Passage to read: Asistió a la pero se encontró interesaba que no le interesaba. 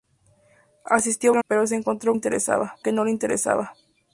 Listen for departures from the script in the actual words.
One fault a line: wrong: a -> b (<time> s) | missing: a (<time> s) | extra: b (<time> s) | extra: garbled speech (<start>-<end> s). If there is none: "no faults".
no faults